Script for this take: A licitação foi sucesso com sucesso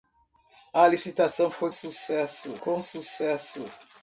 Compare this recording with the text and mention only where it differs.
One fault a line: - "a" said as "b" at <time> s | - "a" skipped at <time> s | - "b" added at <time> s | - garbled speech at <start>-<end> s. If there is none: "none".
none